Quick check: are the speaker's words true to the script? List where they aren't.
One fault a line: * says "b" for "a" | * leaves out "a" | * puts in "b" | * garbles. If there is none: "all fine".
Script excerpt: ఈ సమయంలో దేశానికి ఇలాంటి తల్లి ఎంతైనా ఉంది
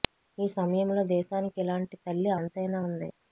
all fine